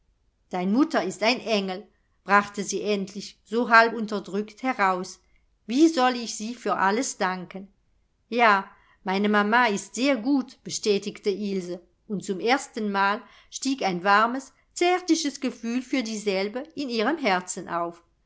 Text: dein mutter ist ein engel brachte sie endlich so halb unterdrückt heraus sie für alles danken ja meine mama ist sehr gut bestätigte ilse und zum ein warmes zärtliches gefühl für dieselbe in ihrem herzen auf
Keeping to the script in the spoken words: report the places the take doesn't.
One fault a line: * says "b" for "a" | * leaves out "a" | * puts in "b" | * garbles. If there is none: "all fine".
* puts in "wie soll ich"
* puts in "erstenmal stieg"